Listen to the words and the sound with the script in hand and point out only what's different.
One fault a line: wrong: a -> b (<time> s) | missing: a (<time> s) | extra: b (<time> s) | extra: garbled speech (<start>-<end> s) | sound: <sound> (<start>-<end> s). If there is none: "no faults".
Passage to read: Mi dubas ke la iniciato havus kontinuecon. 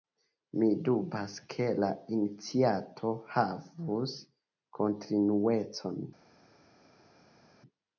no faults